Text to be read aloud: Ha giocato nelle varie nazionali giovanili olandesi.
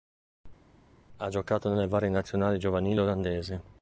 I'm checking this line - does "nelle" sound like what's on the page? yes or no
yes